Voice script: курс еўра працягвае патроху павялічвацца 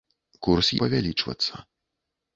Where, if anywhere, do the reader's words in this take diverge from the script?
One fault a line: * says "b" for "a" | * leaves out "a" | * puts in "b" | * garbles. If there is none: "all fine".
* leaves out "еўра працягвае патроху"